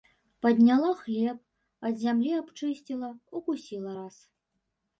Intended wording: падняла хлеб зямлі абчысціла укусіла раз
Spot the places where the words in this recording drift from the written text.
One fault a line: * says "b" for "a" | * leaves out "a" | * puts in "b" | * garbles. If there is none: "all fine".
* puts in "ад"